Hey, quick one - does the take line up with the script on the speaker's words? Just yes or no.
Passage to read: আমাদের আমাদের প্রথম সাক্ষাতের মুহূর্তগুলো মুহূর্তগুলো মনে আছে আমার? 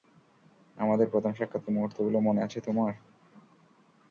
no